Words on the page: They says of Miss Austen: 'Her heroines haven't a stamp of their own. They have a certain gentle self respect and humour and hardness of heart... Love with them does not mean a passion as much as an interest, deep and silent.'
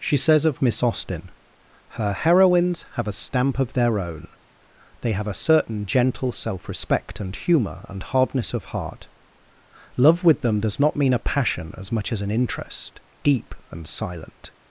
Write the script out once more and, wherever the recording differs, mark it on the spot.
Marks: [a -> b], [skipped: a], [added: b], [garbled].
[They -> She] says of Miss Austen: 'Her heroines [haven't -> have] a stamp of their own. They have a certain gentle self respect and humour and hardness of heart... Love with them does not mean a passion as much as an interest, deep and silent.'